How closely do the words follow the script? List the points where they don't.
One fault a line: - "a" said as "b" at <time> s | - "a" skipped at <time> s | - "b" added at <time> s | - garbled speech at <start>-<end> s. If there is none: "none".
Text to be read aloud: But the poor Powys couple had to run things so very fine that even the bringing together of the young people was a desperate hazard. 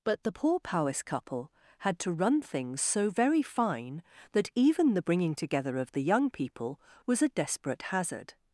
none